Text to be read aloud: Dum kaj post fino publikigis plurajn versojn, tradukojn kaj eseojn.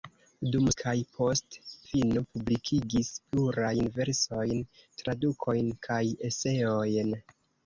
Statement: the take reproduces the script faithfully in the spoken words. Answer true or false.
true